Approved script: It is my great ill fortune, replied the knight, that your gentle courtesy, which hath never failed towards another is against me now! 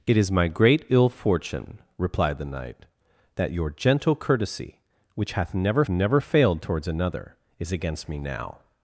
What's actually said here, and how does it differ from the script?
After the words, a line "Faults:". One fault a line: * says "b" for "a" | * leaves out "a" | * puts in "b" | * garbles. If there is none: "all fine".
It is my great ill fortune, replied the knight, that your gentle courtesy, which hath never never failed towards another is against me now!
Faults:
* puts in "never"